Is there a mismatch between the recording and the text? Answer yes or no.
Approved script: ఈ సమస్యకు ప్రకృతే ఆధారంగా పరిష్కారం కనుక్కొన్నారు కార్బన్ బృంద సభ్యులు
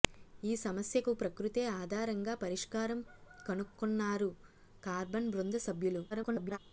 yes